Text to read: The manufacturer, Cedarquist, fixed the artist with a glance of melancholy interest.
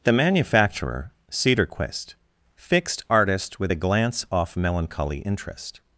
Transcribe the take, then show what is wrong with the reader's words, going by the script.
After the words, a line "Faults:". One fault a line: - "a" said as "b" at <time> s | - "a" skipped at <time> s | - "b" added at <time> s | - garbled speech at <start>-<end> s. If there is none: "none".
The manufacturer, Cedarquist, fixed artist with a glance off melancholy interest.
Faults:
- "the" skipped at 3.0 s
- "of" said as "off" at 4.3 s